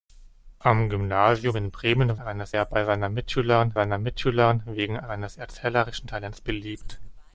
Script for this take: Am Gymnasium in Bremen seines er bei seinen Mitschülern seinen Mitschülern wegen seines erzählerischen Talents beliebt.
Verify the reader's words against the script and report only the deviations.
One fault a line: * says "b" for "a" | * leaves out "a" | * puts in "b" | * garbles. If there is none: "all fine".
all fine